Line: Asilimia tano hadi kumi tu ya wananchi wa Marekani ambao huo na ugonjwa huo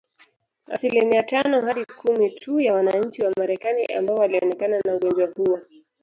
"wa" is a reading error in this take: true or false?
false